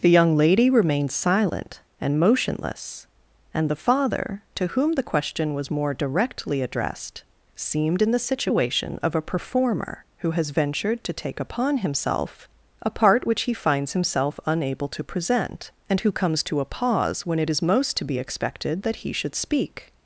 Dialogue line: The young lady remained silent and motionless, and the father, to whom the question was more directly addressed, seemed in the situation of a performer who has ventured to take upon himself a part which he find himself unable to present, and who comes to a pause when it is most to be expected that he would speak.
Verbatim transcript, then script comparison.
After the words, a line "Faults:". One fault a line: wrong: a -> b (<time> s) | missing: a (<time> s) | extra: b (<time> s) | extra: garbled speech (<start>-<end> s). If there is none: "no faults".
The young lady remained silent and motionless, and the father, to whom the question was more directly addressed, seemed in the situation of a performer who has ventured to take upon himself a part which he finds himself unable to present, and who comes to a pause when it is most to be expected that he should speak.
Faults:
wrong: find -> finds (13.5 s)
wrong: would -> should (19.1 s)